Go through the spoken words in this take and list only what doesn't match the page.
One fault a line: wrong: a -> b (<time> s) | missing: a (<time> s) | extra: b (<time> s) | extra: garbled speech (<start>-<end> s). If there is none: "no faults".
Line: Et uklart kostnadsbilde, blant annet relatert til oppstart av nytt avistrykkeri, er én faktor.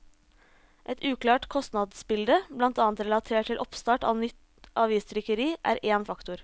no faults